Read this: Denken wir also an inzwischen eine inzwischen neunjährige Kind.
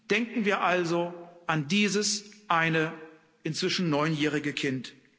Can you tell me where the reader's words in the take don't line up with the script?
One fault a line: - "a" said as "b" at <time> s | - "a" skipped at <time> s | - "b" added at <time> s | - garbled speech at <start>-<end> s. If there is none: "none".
- "inzwischen" said as "dieses" at 1.7 s